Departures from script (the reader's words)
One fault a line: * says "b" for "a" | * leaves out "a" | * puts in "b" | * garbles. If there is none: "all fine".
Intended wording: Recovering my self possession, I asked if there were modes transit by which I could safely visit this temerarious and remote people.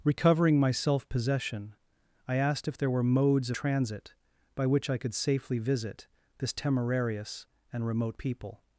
all fine